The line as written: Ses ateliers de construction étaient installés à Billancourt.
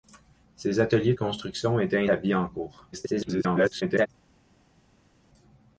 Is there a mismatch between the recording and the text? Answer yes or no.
yes